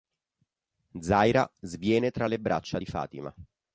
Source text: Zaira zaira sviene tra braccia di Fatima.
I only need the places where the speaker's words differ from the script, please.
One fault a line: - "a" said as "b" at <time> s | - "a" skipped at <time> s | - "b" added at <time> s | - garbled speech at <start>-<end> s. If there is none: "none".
- "zaira" skipped at 1.5 s
- "le" added at 2.2 s